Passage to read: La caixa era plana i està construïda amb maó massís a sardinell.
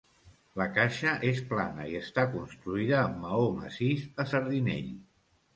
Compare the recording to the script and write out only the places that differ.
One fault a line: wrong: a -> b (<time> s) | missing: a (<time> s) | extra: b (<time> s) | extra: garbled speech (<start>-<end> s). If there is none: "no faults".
wrong: era -> és (1.3 s)